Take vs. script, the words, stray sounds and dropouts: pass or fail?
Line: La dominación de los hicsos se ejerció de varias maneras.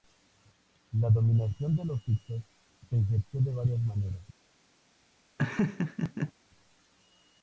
fail